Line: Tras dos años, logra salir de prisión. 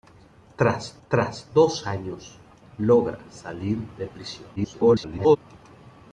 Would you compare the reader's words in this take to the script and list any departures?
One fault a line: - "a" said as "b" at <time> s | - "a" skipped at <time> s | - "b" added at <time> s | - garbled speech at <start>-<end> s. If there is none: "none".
- "tras" added at 1.1 s
- garbled speech at 4.6-5.4 s